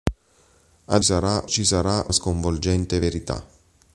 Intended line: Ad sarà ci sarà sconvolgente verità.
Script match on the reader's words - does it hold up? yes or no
yes